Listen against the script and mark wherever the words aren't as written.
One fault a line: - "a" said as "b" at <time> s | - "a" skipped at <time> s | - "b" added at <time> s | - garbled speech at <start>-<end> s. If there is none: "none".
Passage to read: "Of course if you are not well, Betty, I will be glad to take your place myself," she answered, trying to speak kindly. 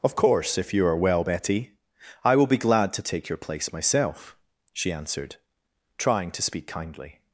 - "not" skipped at 1.0 s